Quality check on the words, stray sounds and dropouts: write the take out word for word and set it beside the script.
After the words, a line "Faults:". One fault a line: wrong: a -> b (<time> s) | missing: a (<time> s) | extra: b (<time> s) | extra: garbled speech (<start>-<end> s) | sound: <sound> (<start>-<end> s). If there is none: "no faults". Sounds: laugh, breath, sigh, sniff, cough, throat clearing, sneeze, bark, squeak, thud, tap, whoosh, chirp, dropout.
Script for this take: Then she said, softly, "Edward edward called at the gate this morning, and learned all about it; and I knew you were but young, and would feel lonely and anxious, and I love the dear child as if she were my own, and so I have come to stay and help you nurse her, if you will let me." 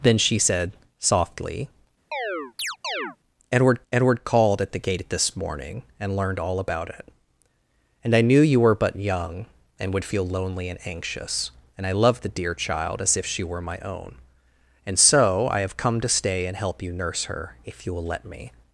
Then she said, softly, "Edward edward called at the gate this morning, and learned all about it; and I knew you were but young, and would feel lonely and anxious, and I love the dear child as if she were my own, and so I have come to stay and help you nurse her, if you will let me."
Faults:
sound: chirp (2.1-3.2 s)